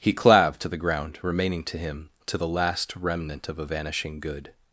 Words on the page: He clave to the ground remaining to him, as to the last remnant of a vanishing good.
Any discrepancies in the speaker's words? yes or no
yes